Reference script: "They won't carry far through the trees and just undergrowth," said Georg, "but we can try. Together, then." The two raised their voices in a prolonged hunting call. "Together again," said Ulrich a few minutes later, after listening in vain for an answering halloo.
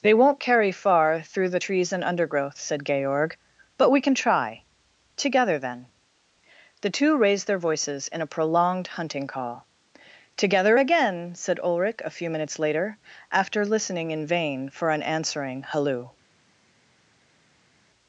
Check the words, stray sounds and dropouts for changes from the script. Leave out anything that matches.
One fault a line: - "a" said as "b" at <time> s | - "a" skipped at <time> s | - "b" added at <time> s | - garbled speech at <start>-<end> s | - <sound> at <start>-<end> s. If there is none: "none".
- "just" skipped at 2.1 s